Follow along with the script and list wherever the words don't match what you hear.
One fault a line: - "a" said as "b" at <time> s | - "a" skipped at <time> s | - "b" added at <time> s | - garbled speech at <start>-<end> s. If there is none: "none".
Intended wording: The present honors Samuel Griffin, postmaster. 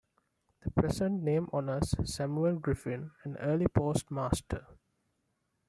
- "name" added at 1.2 s
- "an early" added at 3.2 s